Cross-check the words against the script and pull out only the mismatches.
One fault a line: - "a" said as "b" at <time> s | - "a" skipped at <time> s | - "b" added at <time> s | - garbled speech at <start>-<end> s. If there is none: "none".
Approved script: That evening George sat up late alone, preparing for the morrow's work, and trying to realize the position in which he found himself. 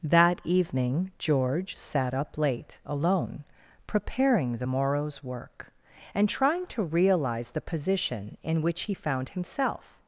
- "for" skipped at 4.6 s